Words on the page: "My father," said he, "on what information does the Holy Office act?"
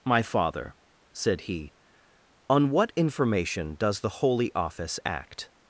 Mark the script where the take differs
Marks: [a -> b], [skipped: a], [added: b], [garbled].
"My father," said he, "on what information does the Holy Office act?"